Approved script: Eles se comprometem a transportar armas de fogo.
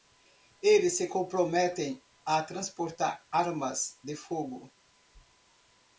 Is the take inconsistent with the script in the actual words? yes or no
no